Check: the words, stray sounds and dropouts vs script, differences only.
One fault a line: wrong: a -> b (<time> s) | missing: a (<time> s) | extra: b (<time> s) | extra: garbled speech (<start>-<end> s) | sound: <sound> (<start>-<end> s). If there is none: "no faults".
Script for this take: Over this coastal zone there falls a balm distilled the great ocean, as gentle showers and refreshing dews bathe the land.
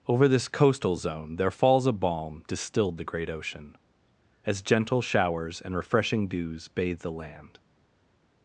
no faults